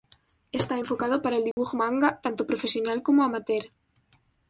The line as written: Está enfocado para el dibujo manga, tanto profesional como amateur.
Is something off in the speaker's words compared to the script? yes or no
no